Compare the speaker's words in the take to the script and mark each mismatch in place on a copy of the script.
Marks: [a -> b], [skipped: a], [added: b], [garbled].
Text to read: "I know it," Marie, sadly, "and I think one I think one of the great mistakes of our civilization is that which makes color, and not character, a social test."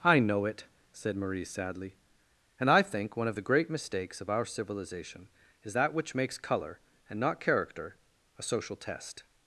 "I know it," [added: said] Marie, sadly, "and I think one [skipped: I think one] of the great mistakes of our civilization is that which makes color, and not character, a social test."